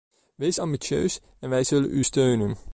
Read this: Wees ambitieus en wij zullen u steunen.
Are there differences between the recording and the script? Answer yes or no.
no